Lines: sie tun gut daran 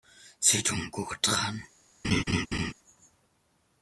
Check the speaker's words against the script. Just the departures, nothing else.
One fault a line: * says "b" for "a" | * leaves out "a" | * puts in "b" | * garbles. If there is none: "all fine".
all fine